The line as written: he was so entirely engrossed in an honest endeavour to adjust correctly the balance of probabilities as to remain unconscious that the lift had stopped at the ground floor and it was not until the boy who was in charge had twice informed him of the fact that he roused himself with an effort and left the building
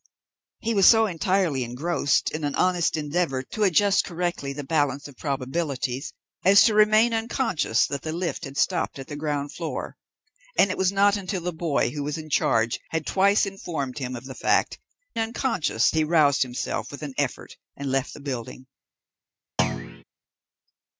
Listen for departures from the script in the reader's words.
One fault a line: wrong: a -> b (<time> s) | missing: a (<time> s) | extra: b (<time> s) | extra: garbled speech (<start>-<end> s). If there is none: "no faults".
wrong: that -> unconscious (15.2 s)